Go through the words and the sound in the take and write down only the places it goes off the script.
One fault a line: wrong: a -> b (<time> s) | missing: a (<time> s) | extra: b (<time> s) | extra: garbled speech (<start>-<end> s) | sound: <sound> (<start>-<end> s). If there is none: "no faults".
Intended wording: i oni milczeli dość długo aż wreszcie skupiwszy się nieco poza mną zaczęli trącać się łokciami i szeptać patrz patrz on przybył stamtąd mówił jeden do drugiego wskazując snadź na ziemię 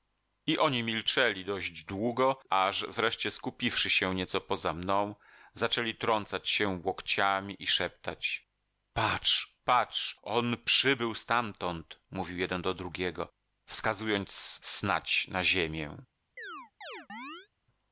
sound: chirp (16.4-17.5 s)